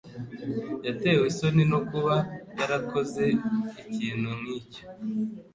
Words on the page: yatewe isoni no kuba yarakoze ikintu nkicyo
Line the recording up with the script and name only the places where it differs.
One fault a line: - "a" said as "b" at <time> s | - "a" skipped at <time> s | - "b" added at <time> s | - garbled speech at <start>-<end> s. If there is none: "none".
none